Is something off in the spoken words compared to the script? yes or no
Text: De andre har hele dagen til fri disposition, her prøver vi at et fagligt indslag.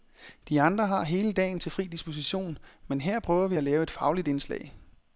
yes